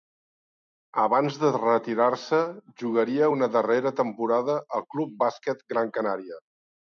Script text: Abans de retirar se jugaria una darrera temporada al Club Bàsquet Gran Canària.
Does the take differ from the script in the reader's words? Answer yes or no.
no